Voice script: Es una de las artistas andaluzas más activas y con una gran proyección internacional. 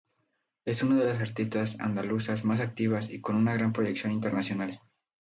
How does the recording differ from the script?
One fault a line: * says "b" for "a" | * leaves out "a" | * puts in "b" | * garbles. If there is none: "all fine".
all fine